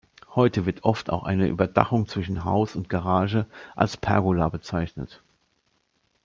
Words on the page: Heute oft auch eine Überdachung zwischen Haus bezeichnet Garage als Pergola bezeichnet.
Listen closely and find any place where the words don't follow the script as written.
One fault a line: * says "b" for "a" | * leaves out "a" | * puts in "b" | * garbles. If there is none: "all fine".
* puts in "wird"
* says "und" for "bezeichnet"